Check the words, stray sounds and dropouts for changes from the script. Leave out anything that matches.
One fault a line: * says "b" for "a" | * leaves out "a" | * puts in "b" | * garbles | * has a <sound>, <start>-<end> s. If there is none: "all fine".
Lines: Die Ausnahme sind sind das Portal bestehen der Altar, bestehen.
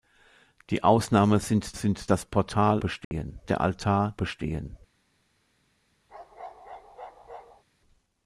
* has a dropout, 3.0-3.1 s
* has a bark, 6.1-7.6 s